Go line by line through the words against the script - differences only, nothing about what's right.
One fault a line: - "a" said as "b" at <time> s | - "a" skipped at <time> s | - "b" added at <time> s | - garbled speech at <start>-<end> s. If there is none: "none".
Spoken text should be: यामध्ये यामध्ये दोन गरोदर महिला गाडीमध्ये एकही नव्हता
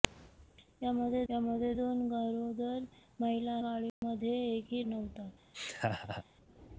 none